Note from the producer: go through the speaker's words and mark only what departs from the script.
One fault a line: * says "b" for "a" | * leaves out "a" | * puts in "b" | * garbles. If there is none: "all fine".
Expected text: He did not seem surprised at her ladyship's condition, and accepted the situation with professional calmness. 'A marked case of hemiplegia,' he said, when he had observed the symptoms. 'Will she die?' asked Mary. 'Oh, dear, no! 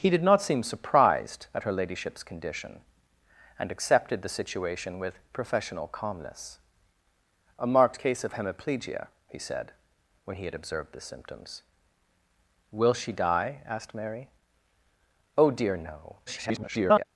* garbles